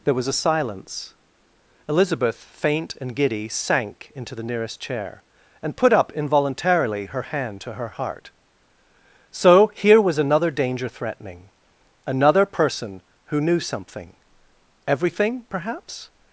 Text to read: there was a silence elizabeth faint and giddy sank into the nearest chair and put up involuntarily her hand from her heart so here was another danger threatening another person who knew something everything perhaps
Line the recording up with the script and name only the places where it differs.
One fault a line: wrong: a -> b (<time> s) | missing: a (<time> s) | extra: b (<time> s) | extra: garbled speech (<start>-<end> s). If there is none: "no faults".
wrong: from -> to (7.6 s)